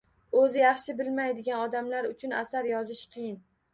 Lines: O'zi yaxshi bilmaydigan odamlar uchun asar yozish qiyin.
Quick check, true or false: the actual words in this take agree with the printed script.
true